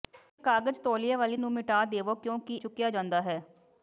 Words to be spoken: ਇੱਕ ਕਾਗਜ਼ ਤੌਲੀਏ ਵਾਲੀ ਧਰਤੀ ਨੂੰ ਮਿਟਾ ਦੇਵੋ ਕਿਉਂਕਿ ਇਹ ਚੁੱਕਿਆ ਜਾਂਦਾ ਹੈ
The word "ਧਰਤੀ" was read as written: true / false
false